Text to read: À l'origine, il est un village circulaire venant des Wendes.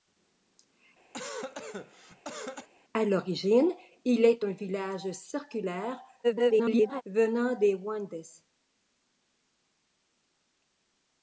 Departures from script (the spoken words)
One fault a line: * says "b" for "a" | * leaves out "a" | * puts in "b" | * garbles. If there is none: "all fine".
* garbles